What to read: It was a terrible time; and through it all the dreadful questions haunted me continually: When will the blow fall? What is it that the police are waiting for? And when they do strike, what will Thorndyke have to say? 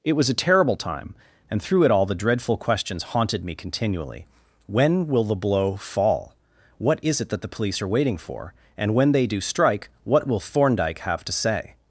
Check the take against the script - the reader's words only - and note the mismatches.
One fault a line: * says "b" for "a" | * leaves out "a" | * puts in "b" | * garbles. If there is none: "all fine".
all fine